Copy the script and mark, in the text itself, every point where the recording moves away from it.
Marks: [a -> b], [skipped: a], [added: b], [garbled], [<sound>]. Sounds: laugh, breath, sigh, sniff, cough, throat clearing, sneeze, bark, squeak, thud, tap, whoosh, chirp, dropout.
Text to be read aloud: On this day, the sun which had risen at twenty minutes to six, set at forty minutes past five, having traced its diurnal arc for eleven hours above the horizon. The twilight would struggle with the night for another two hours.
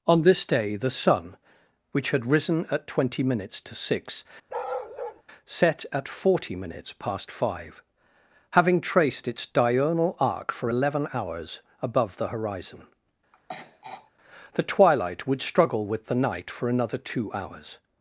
On this day, the sun which had risen at twenty minutes to six, [bark] set at forty minutes past five, having traced its diurnal arc for eleven hours above the horizon. [throat clearing] The twilight would struggle with the night for another two hours.